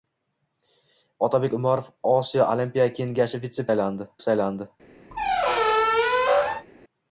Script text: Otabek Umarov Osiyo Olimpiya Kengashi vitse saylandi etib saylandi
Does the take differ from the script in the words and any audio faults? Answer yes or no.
yes